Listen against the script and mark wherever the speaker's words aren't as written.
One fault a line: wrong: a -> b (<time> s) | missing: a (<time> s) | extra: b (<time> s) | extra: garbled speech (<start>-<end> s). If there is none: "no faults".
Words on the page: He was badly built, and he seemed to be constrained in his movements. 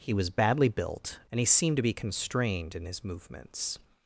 no faults